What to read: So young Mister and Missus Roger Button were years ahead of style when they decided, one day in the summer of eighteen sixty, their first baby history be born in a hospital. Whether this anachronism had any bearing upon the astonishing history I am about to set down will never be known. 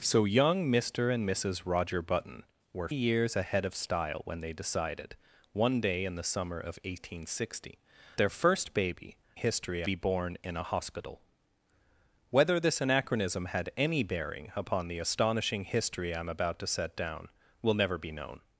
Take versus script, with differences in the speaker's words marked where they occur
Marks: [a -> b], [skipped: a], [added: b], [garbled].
So young Mister and Missus Roger Button were years ahead of style when they decided, one day in the summer of eighteen sixty, their first baby history be born in a hospital. Whether this anachronism had any bearing upon the astonishing history I am about to set down will never be known.